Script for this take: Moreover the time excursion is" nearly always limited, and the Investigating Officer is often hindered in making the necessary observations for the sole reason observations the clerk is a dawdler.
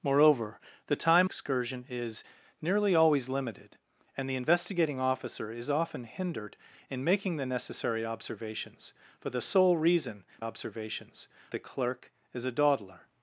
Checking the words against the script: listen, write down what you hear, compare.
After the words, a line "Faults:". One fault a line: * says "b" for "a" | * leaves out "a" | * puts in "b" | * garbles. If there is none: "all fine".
Moreover the time excursion is" nearly always limited, and the Investigating Officer is often hindered in making the necessary observations for the sole reason observations the clerk is a dawdler.
Faults:
all fine